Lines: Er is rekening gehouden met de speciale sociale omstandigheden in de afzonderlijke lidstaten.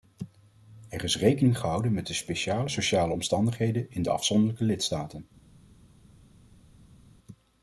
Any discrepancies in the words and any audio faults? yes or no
no